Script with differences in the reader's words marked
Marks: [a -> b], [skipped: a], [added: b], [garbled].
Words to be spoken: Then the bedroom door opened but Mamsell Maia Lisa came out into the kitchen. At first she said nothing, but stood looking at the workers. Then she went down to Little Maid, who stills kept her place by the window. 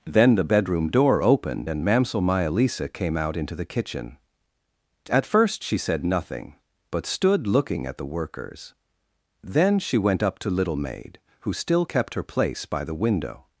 Then the bedroom door opened [but -> and] Mamsell Maia Lisa came out into the kitchen. At first she said nothing, but stood looking at the workers. Then she went [down -> up] to Little Maid, who [stills -> still] kept her place by the window.